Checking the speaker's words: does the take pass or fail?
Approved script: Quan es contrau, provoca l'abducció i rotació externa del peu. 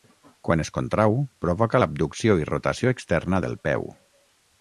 pass